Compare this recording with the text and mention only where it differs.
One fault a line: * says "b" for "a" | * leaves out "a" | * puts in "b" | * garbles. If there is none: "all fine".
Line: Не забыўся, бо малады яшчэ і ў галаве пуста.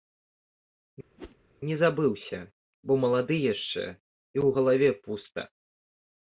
all fine